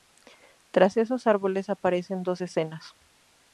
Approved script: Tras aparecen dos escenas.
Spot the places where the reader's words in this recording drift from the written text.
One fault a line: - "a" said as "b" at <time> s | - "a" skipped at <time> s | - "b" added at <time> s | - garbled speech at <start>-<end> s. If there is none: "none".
- "esos árboles" added at 1.0 s